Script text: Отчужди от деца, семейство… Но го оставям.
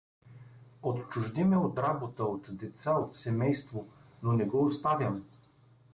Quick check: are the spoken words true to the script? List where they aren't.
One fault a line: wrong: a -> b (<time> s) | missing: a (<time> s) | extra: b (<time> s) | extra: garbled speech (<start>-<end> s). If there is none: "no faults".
extra: ме (1.4 s)
extra: работа от (1.8 s)
extra: от (2.9 s)
extra: не (4.3 s)